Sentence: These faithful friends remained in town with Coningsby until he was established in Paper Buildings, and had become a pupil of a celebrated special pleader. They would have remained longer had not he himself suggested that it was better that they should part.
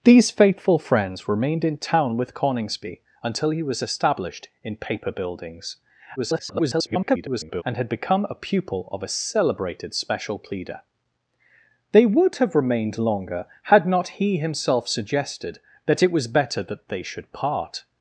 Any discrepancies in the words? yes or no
yes